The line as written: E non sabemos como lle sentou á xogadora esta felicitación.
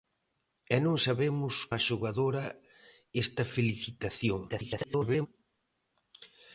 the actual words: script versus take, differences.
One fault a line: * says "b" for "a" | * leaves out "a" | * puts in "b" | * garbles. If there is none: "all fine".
* leaves out "como lle sentou"
* garbles